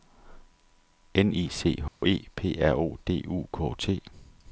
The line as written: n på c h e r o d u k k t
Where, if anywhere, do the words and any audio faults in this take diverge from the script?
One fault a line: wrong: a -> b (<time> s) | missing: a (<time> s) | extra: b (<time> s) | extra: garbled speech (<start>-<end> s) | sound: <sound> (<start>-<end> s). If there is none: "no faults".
wrong: på -> i (1.4 s)
sound: dropout (1.9-2.0 s)
extra: p (2.3 s)
missing: k (3.7 s)